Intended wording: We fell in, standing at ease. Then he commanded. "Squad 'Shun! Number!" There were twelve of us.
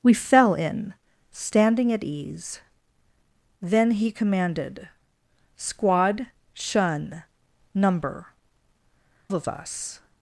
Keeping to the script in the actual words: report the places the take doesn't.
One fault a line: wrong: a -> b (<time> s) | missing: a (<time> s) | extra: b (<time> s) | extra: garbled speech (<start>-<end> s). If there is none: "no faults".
missing: There were twelve (8.3 s)